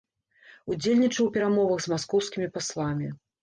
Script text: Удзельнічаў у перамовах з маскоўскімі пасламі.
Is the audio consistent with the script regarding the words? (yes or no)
yes